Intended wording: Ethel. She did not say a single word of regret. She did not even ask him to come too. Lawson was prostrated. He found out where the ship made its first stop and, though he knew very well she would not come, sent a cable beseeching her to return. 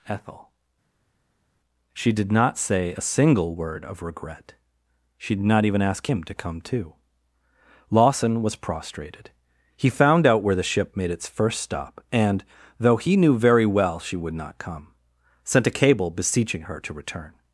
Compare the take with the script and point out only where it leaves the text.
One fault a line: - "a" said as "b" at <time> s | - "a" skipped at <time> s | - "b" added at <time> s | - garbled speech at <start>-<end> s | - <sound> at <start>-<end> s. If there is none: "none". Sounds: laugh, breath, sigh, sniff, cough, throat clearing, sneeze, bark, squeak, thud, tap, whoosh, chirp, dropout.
none